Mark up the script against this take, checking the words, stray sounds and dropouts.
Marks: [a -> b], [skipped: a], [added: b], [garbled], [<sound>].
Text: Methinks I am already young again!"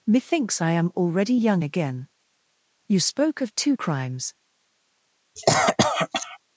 Methinks I am already young again!" [added: You spoke of two crimes] [cough]